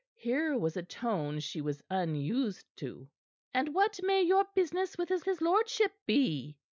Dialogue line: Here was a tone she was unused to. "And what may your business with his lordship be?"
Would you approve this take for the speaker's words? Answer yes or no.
no